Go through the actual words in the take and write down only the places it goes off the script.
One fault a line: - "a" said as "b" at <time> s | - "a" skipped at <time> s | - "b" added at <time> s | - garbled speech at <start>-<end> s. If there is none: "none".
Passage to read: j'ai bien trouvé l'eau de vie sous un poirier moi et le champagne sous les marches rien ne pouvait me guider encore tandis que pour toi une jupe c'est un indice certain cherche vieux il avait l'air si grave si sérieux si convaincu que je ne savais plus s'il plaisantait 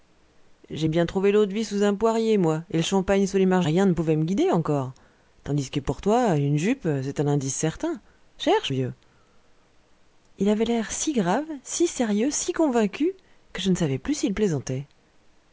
none